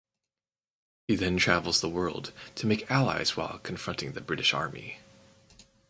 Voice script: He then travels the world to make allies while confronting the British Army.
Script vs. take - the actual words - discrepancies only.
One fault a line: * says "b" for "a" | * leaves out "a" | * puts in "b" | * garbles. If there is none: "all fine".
all fine